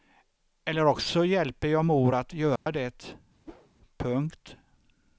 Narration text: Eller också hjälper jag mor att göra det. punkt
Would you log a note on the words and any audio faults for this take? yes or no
yes